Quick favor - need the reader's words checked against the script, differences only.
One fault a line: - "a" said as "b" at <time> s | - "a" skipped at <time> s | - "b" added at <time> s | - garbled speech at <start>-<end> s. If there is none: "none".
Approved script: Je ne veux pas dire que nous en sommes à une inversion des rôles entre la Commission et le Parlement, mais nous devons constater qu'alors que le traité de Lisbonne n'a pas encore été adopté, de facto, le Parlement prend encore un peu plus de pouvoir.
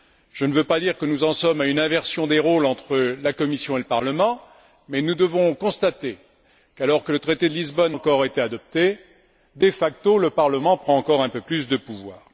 - "n'a pas" skipped at 8.0 s